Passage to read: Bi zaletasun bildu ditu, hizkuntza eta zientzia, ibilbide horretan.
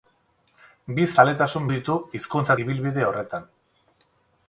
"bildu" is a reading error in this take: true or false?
true